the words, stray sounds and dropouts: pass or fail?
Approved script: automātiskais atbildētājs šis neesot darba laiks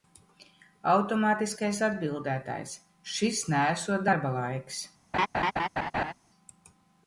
fail